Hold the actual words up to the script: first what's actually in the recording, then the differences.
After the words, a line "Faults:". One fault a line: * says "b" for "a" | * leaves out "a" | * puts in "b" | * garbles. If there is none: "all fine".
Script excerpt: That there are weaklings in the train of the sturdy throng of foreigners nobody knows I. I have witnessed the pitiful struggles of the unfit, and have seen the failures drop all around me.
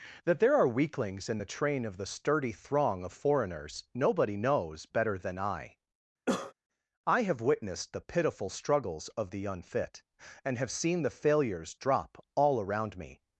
That there are weaklings in the train of the sturdy throng of foreigners nobody knows better than I. I have witnessed the pitiful struggles of the unfit, and have seen the failures drop all around me.
Faults:
* puts in "better than"